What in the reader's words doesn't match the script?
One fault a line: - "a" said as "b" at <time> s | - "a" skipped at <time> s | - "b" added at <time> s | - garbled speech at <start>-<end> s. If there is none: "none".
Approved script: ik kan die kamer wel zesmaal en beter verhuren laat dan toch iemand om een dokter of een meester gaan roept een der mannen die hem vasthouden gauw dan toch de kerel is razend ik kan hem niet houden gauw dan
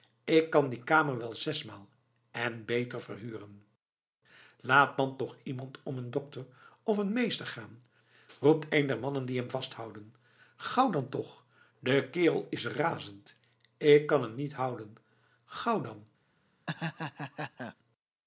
none